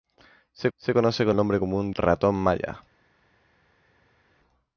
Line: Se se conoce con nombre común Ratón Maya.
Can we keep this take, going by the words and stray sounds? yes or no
yes